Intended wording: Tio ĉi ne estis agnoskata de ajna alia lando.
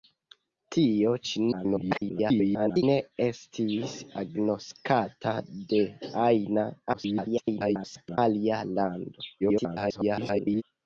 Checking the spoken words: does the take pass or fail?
fail